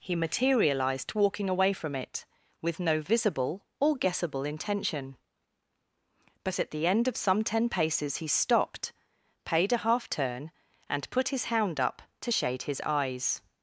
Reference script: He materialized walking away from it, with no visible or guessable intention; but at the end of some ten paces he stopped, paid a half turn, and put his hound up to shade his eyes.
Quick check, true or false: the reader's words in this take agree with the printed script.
true